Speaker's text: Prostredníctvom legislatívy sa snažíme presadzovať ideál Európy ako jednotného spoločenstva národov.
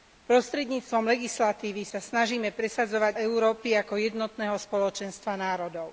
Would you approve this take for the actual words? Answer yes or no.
no